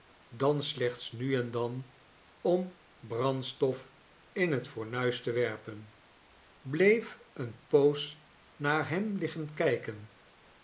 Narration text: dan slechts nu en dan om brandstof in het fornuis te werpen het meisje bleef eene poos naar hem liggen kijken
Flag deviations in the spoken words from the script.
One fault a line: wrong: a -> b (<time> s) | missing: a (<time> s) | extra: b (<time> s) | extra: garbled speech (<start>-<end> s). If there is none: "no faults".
missing: het meisje (5.9 s)